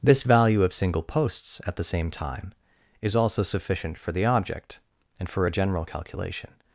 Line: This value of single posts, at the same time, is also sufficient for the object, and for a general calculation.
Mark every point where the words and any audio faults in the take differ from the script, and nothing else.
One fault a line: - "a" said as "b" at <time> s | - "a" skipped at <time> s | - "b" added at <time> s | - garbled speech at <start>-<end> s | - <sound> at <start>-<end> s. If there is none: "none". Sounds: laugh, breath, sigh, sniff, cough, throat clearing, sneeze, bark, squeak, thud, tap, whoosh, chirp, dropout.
none